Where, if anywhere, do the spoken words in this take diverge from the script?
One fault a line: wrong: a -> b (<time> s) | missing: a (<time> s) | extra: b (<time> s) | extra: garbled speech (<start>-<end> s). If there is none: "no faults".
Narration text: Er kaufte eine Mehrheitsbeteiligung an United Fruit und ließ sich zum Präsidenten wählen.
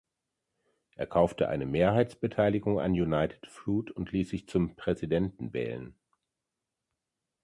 no faults